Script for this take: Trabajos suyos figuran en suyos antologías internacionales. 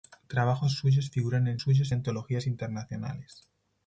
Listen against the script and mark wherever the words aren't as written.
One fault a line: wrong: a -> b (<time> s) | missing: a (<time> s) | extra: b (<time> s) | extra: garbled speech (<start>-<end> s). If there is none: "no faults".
no faults